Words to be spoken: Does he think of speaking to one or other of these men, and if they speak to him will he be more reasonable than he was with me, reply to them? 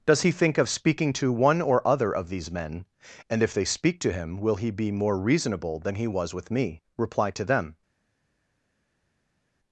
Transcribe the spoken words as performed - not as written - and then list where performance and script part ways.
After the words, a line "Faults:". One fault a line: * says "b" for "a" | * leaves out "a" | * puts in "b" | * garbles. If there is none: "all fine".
Does he think of speaking to one or other of these men, and if they speak to him will he be more reasonable than he was with me, reply to them?
Faults:
all fine